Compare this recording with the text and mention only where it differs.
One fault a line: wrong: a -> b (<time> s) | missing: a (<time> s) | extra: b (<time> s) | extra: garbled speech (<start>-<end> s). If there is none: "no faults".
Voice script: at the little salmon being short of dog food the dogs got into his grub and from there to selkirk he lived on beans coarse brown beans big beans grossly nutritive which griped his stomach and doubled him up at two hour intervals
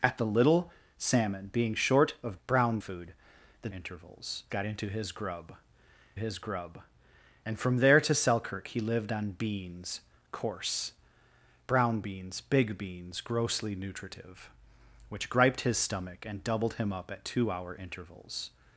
wrong: dog -> brown (2.5 s)
wrong: dogs -> intervals (3.7 s)
extra: his grub (6.2 s)